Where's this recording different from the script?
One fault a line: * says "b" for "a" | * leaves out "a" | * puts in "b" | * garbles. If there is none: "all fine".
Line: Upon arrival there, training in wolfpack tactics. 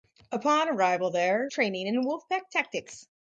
all fine